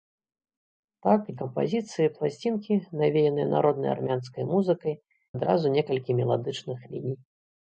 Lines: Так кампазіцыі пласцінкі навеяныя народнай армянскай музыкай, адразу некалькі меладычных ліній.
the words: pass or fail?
pass